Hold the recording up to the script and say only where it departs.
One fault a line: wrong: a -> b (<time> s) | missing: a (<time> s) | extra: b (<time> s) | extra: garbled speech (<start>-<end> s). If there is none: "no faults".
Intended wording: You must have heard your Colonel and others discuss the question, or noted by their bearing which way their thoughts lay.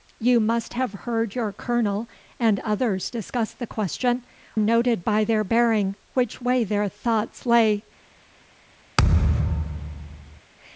missing: or (4.2 s)